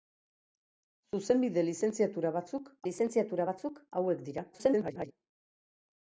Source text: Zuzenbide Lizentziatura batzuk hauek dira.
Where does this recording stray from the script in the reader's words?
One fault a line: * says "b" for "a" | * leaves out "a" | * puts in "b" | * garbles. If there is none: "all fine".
* puts in "Lizentziatura batzuk"
* garbles